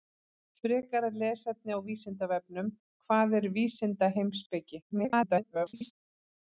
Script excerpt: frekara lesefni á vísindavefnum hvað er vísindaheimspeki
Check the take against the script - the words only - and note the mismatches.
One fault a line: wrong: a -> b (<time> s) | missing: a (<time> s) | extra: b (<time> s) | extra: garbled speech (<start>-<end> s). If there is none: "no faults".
extra: garbled speech (4.9-5.9 s)